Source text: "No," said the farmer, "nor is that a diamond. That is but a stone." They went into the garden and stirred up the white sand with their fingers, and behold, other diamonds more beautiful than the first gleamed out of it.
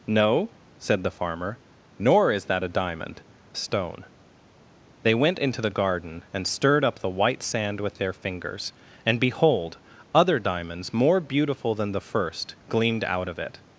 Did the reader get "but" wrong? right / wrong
wrong